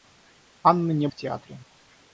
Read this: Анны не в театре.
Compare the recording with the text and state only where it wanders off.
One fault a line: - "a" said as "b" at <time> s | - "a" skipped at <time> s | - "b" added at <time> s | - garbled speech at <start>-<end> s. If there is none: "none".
none